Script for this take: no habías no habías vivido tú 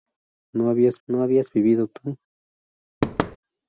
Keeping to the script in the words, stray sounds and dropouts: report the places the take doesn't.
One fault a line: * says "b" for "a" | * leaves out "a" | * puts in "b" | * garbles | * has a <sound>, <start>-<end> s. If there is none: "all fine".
* has a thud, 3.0-3.4 s